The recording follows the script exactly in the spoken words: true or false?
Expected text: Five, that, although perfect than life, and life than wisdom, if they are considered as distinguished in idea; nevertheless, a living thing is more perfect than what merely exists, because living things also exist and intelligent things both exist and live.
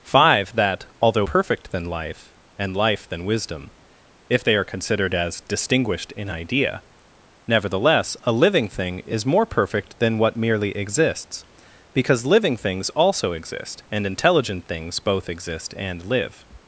true